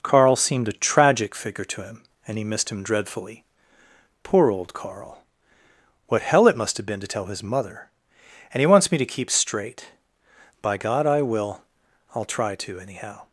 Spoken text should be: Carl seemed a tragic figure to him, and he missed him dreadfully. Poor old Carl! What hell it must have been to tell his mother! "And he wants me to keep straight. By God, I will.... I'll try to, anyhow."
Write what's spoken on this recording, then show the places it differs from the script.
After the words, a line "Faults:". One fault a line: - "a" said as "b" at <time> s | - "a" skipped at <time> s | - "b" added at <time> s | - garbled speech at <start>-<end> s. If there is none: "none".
Carl seemed a tragic figure to him, and he missed him dreadfully. Poor old Carl! What hell it must have been to tell his mother! "And he wants me to keep straight. By God, I will.... I'll try to, anyhow."
Faults:
none